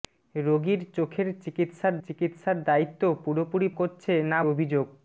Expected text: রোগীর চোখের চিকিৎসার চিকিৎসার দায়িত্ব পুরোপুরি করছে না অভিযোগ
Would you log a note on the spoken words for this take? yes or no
no